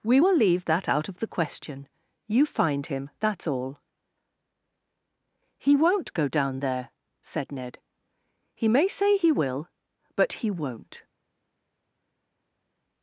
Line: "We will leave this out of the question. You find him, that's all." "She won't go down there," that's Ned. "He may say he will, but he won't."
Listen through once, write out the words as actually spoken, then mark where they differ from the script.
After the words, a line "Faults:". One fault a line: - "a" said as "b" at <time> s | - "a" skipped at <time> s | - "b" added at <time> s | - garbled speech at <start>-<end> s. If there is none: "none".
"We will leave that out of the question. You find him, that's all." "He won't go down there," said Ned. "He may say he will, but he won't."
Faults:
- "this" said as "that" at 0.7 s
- "She" said as "He" at 5.6 s
- "that's" said as "said" at 7.2 s